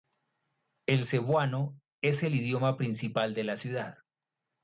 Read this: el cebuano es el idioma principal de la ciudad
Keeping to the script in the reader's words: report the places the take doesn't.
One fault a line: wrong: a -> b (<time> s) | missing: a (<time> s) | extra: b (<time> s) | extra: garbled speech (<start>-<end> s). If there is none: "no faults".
no faults